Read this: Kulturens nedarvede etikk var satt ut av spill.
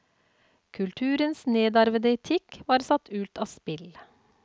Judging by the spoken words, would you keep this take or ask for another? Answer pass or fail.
pass